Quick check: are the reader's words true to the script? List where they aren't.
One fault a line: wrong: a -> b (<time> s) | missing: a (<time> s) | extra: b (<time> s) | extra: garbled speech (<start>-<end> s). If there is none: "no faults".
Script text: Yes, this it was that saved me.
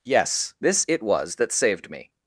no faults